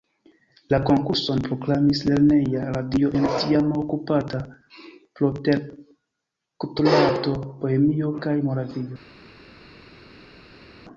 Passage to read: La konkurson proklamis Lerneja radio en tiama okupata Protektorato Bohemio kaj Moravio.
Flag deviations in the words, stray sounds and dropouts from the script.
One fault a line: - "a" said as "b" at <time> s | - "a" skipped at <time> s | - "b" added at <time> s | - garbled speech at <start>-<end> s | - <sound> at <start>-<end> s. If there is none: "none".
none